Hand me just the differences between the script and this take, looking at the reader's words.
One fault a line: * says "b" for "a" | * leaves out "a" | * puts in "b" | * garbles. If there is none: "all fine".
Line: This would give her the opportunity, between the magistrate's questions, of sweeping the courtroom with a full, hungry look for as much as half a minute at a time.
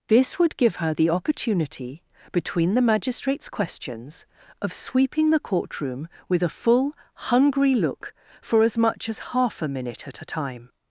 all fine